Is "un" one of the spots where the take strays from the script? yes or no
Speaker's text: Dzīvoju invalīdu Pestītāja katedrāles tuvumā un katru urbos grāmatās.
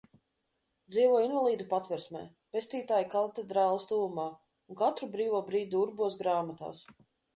no